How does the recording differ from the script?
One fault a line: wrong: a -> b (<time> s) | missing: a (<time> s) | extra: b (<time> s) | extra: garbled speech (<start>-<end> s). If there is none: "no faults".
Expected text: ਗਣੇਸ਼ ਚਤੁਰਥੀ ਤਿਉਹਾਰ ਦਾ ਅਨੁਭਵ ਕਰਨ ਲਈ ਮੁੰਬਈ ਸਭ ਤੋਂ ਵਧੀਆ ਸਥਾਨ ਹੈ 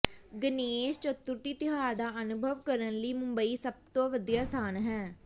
no faults